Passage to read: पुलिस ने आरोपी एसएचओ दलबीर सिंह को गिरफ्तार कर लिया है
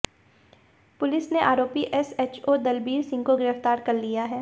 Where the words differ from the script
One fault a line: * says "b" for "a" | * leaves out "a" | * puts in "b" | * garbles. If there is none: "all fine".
all fine